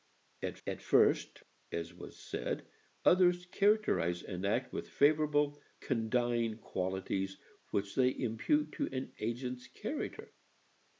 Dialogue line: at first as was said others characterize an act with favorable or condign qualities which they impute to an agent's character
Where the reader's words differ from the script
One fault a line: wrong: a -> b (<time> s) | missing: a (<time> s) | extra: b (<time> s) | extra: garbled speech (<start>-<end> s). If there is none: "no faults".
extra: at (0.7 s)
missing: or (5.6 s)